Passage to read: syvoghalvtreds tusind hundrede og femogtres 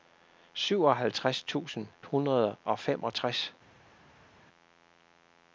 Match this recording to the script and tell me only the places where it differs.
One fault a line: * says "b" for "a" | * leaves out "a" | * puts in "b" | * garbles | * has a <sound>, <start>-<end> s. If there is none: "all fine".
all fine